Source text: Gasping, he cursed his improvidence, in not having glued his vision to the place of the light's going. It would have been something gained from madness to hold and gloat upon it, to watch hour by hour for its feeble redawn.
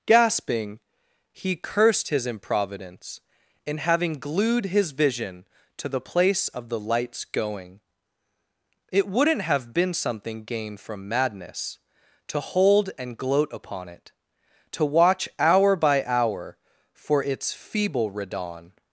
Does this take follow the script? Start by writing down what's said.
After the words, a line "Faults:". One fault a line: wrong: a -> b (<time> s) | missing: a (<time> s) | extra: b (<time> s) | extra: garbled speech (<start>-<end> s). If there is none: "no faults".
Gasping, he cursed his improvidence, in having glued his vision to the place of the light's going. It wouldn't have been something gained from madness to hold and gloat upon it, to watch hour by hour for its feeble redawn.
Faults:
missing: not (3.8 s)
wrong: would -> wouldn't (9.1 s)